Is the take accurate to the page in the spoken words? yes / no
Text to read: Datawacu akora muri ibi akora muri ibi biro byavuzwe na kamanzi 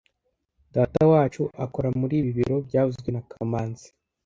no